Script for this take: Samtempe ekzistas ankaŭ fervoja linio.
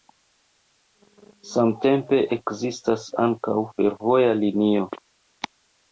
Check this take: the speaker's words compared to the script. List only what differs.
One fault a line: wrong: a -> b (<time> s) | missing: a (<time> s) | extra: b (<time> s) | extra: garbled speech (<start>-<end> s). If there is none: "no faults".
no faults